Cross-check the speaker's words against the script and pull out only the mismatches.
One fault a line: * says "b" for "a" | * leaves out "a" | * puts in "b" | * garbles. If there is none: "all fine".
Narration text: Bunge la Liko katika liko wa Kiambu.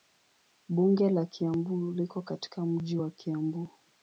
* puts in "Kiambu"
* says "mji" for "liko"